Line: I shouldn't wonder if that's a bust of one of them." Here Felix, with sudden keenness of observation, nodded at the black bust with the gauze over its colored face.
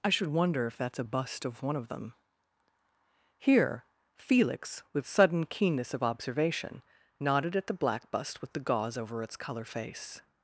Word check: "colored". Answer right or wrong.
wrong